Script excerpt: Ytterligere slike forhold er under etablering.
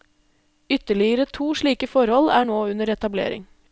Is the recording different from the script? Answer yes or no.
yes